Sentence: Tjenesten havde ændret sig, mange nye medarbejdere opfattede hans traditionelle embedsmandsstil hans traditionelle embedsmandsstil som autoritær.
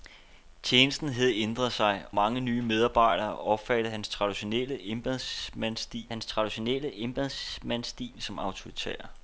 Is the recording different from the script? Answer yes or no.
no